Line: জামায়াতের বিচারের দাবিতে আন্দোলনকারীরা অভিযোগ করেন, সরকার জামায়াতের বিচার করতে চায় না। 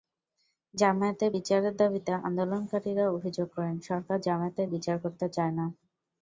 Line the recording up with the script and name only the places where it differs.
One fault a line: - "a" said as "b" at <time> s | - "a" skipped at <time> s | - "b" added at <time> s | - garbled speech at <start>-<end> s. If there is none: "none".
none